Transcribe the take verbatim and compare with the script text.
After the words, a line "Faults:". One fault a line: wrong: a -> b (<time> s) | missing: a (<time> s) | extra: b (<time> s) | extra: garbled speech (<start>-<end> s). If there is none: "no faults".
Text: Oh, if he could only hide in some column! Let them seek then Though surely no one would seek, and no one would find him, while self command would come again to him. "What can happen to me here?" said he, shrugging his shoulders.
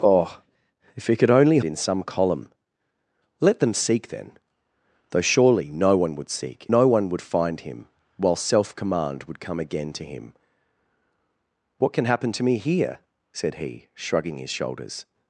Oh, if he could only in some column! Let them seek then Though surely no one would seek, no one would find him, while self command would come again to him. "What can happen to me here?" said he, shrugging his shoulders.
Faults:
missing: hide (1.6 s)
missing: and (6.7 s)